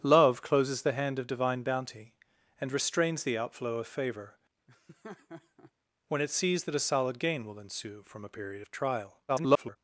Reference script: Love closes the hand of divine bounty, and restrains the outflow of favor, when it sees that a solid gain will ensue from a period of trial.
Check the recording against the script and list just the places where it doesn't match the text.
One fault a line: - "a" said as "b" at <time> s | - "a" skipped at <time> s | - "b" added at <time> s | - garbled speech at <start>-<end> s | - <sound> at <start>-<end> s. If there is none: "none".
- laugh at 4.7-5.7 s
- garbled speech at 9.3-9.8 s